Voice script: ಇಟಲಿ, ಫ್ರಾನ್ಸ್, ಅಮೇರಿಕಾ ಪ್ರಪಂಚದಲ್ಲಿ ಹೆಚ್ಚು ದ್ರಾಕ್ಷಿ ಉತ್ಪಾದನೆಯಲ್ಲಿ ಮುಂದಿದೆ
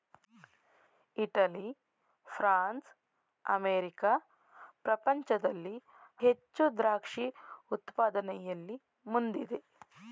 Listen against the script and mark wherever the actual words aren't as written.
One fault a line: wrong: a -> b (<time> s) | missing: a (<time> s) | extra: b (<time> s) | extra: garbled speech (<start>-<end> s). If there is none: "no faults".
no faults